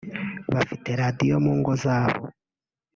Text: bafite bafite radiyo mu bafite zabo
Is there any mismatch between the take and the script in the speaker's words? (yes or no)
yes